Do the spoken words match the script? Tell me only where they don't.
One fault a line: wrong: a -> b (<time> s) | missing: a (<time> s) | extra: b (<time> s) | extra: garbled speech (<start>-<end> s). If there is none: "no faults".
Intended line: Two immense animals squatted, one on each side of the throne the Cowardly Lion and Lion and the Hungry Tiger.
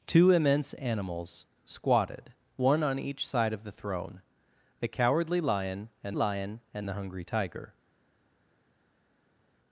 no faults